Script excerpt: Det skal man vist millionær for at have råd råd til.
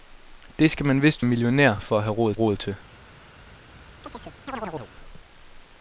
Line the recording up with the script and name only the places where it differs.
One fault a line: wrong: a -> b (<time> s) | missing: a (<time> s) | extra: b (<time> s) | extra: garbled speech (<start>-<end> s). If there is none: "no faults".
no faults